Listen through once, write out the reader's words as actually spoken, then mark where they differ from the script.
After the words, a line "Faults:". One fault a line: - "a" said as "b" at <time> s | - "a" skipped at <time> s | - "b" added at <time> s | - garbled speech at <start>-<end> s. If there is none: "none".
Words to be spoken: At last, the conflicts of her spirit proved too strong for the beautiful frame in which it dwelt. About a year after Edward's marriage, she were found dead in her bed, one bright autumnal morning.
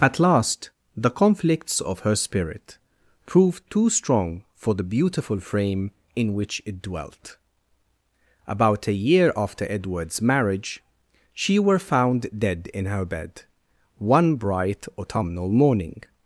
At last, the conflicts of her spirit proved too strong for the beautiful frame in which it dwelt. About a year after Edward's marriage, she were found dead in her bed, one bright autumnal morning.
Faults:
none